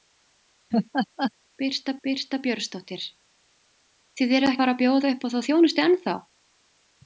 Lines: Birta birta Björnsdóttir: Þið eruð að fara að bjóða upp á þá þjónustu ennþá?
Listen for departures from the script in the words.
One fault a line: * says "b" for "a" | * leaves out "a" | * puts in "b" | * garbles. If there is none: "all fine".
all fine